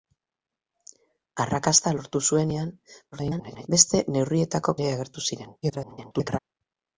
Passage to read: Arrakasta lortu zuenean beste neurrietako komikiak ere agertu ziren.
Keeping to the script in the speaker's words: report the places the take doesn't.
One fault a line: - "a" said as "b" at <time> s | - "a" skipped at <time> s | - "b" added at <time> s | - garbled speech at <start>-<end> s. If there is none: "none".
- garbled speech at 3.1-3.7 s
- "komikiak" skipped at 4.8 s
- garbled speech at 5.6-6.4 s